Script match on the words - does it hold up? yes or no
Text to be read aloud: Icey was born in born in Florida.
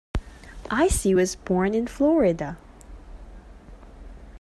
no